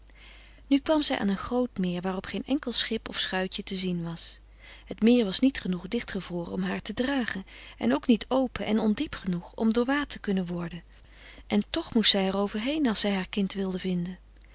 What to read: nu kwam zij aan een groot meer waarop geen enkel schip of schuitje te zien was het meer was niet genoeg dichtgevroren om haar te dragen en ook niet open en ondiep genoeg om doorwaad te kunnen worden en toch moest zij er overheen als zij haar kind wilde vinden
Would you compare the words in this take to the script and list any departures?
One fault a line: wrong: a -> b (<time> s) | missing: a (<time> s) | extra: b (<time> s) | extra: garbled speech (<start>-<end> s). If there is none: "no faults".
no faults